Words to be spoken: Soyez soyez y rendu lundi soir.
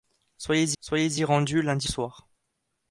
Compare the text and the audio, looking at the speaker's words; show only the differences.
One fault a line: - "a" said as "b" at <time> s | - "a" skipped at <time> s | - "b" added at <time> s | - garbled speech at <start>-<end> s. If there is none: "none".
none